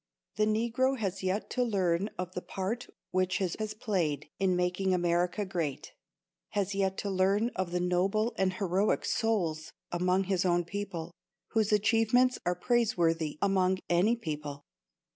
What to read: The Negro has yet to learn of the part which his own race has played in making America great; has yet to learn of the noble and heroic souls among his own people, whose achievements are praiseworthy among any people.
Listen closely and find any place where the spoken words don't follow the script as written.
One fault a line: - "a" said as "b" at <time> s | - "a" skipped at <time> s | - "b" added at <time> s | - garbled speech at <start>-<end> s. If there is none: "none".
- "own race" skipped at 3.5 s